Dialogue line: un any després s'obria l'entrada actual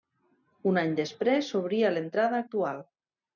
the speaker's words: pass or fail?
pass